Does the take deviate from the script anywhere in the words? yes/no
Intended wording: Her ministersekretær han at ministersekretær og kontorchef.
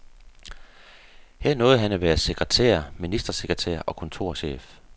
yes